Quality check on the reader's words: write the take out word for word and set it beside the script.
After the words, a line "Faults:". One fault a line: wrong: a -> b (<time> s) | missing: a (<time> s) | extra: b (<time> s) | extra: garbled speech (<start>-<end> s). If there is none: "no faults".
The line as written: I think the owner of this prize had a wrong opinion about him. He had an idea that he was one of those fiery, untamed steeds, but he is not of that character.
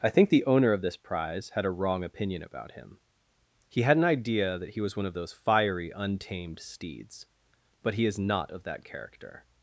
I think the owner of this prize had a wrong opinion about him. He had an idea that he was one of those fiery, untamed steeds, but he is not of that character.
Faults:
no faults